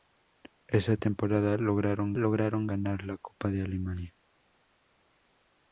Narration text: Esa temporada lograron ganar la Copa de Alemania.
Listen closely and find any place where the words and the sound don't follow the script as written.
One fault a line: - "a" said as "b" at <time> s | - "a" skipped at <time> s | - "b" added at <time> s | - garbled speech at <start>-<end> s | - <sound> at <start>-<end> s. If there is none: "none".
- "lograron" added at 2.2 s